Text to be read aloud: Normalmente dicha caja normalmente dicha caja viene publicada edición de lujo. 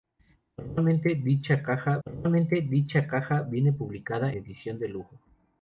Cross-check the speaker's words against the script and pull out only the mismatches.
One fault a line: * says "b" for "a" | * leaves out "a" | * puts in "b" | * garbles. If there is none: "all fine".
all fine